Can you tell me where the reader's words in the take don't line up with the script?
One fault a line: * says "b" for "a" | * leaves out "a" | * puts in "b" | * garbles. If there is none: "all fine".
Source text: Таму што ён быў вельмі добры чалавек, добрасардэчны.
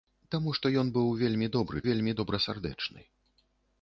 * says "вельмі" for "чалавек"